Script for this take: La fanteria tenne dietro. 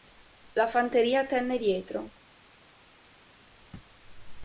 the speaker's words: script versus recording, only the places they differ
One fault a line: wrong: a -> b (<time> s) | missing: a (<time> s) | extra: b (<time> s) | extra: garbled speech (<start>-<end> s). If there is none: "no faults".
no faults